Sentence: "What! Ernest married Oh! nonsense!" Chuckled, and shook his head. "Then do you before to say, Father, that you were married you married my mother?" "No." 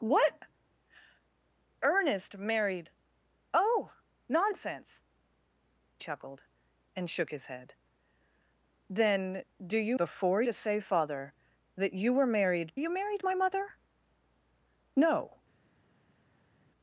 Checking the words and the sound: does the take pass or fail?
pass